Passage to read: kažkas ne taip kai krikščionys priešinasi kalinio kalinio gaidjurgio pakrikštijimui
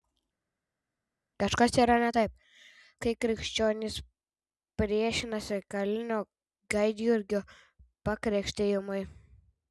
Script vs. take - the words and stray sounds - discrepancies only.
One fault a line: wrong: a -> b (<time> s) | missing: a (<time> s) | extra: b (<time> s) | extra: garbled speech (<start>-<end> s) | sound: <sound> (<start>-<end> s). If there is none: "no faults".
extra: yra (1.8 s)
missing: kalinio (6.2 s)